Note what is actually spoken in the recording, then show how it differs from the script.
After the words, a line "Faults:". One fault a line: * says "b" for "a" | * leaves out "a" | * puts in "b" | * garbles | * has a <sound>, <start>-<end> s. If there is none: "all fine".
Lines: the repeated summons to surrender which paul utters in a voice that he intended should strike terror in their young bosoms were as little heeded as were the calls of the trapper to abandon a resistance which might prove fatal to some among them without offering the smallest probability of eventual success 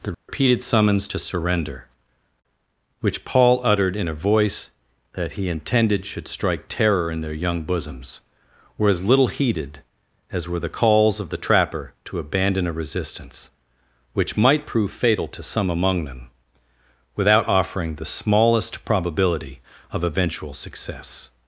the repeated summons to surrender which paul uttered in a voice that he intended should strike terror in their young bosoms were as little heeded as were the calls of the trapper to abandon a resistance which might prove fatal to some among them without offering the smallest probability of eventual success
Faults:
* has a dropout, 0.1-0.3 s
* says "uttered" for "utters"